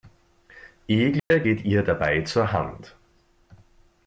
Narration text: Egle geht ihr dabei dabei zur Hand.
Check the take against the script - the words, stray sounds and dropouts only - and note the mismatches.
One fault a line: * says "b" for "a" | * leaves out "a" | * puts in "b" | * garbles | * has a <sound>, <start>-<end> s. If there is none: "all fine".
* has a dropout, 1.2-1.3 s
* leaves out "dabei"